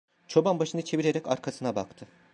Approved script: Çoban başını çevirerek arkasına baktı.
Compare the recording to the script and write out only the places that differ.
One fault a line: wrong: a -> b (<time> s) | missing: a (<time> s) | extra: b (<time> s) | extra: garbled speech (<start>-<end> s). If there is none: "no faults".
no faults